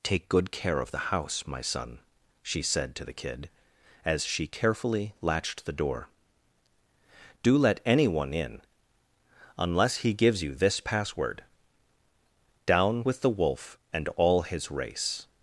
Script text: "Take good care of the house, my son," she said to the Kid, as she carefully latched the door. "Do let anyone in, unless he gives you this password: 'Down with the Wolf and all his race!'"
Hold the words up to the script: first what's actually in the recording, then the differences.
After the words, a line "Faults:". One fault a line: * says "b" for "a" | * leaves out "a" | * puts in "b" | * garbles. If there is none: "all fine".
"Take good care of the house, my son," she said to the Kid, as she carefully latched the door. "Do let anyone in, unless he gives you this password: 'Down with the Wolf and all his race!'"
Faults:
all fine